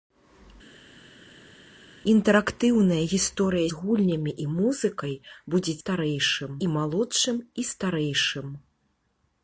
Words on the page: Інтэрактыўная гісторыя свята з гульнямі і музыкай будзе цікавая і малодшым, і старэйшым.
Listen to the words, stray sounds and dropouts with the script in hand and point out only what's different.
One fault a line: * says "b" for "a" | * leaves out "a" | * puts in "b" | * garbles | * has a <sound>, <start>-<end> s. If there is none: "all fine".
* leaves out "свята"
* says "старэйшым" for "цікавая"